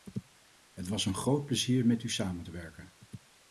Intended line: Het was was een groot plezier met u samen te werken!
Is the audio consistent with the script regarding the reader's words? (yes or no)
no